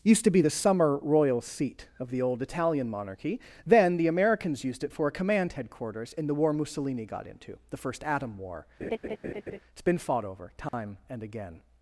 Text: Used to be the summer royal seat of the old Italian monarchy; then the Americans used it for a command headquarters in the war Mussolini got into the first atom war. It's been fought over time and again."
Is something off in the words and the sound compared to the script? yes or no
yes